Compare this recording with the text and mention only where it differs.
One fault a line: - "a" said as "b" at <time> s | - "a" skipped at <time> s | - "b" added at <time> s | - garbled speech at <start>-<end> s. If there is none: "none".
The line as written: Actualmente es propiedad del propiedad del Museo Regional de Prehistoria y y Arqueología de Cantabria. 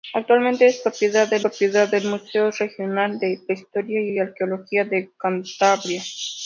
none